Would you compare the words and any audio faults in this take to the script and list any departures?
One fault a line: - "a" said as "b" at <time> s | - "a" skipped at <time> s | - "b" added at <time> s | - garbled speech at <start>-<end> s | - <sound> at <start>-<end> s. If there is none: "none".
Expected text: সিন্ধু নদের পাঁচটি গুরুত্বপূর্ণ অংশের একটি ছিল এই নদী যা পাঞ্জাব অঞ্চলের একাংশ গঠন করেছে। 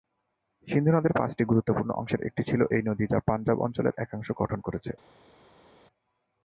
none